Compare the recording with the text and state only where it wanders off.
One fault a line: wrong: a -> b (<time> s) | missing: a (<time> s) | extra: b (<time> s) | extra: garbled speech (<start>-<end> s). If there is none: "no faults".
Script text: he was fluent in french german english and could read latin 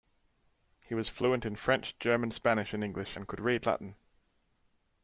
extra: spanish and (2.3 s)